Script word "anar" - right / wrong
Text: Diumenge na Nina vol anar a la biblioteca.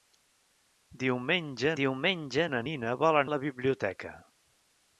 wrong